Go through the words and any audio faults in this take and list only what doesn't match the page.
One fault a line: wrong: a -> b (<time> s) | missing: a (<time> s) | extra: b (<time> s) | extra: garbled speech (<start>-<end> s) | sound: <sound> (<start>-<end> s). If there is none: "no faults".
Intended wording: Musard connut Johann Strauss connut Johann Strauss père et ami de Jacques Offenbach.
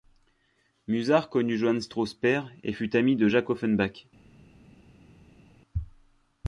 missing: connut Johann Strauss (2.1 s)
extra: fut (2.7 s)